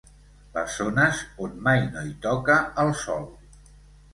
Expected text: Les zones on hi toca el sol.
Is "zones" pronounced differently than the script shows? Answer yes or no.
no